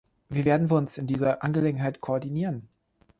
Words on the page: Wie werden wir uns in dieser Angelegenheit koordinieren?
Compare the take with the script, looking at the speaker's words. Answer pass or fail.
pass